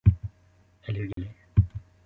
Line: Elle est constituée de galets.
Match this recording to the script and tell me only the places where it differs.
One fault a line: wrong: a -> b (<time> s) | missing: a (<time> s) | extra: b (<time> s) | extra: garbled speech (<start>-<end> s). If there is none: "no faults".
missing: est constituée (1.0 s)